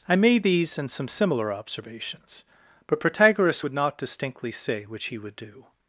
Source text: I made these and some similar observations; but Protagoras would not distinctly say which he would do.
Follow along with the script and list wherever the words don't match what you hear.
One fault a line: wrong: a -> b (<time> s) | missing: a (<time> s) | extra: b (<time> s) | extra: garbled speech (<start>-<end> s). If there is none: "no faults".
no faults